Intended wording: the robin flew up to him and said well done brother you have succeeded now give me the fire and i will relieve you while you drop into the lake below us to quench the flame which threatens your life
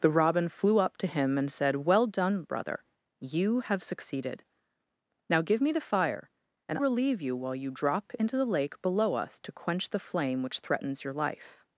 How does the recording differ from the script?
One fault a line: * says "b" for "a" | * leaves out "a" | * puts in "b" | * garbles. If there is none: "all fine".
* leaves out "i will"